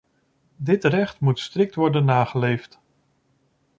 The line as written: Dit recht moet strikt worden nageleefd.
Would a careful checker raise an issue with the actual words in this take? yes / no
no